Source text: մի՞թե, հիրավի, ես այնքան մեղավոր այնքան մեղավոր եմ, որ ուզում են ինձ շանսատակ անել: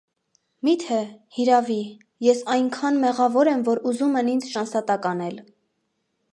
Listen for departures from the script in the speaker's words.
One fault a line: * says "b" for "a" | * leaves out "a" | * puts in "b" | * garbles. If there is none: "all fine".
* leaves out "այնքան մեղավոր"